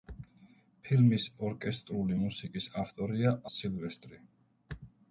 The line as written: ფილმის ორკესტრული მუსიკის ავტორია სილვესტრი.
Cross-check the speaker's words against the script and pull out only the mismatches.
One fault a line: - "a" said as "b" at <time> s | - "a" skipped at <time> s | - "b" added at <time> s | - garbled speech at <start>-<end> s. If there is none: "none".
none